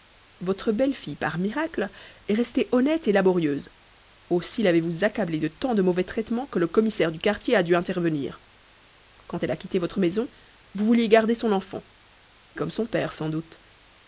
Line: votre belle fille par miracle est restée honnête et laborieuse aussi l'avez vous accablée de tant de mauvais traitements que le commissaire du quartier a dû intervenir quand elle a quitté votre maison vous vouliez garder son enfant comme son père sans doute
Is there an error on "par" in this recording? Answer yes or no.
no